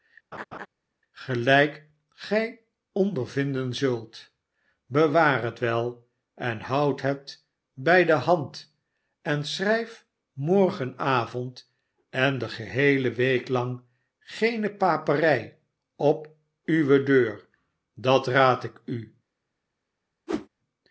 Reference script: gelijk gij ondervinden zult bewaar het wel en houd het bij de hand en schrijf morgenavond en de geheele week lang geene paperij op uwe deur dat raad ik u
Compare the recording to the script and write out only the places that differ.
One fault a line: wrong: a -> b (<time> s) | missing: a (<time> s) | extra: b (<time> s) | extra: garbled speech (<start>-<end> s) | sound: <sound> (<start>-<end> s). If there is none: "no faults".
sound: laugh (0.3-0.7 s)
sound: whoosh (20.3-20.5 s)